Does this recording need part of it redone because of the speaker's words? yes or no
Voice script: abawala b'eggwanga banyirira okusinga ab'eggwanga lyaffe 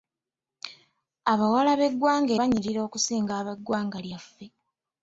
no